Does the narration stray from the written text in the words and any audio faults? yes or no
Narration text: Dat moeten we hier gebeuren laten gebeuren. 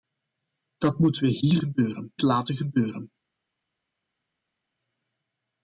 no